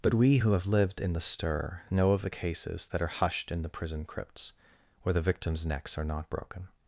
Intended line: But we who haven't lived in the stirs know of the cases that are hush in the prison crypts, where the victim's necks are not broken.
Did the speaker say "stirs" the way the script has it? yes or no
no